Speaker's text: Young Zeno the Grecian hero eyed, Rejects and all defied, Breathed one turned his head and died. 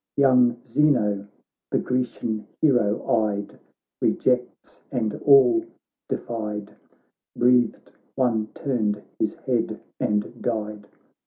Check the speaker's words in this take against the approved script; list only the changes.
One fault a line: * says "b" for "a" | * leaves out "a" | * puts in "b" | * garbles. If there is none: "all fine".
all fine